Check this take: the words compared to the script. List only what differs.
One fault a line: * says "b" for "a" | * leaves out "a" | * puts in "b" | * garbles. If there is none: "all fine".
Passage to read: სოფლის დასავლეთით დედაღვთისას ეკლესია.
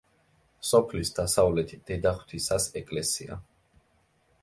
all fine